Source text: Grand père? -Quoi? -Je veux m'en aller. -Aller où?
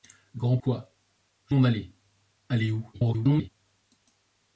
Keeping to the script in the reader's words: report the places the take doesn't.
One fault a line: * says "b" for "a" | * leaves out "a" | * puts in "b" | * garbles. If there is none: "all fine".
* leaves out "père"
* leaves out "veux"
* garbles